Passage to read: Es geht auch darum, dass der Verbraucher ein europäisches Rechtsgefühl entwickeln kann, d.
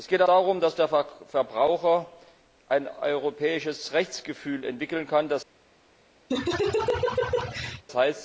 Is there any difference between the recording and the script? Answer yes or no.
yes